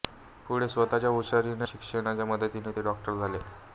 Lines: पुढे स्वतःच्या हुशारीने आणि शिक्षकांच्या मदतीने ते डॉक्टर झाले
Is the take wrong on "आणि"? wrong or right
wrong